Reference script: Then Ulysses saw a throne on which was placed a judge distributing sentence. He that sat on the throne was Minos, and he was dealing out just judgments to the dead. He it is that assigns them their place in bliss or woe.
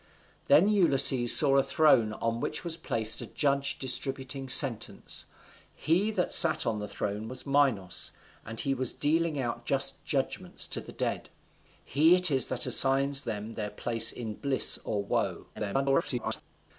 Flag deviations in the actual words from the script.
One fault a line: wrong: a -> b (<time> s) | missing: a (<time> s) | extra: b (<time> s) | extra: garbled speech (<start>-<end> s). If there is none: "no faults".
extra: garbled speech (15.5-16.4 s)